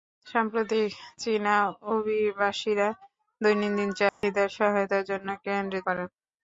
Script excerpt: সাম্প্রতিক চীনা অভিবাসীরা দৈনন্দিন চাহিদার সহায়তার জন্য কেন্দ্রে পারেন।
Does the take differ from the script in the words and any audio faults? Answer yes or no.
yes